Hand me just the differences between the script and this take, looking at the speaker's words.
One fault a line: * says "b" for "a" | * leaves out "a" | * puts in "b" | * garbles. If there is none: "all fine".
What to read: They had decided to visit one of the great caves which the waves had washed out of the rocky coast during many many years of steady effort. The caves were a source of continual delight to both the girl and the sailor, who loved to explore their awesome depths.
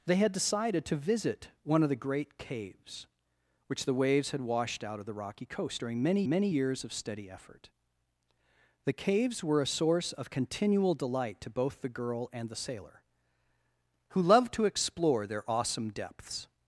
all fine